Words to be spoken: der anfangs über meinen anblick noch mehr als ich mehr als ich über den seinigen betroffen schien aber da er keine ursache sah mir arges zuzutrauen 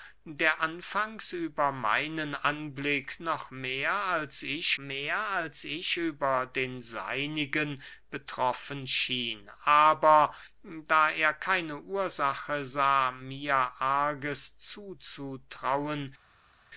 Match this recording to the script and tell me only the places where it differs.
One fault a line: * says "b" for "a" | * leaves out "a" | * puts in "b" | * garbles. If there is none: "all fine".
all fine